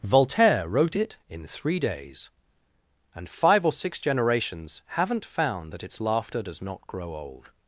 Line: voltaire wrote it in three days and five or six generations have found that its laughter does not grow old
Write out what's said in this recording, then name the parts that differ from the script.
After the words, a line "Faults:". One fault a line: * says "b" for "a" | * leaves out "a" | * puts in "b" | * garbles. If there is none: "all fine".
voltaire wrote it in three days and five or six generations haven't found that its laughter does not grow old
Faults:
* says "haven't" for "have"